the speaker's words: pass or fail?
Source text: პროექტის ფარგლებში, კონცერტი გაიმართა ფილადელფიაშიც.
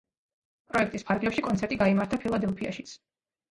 pass